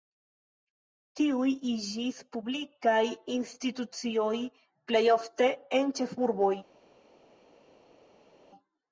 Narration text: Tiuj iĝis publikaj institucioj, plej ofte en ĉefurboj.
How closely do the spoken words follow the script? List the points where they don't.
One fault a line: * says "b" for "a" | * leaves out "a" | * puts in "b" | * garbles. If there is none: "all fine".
all fine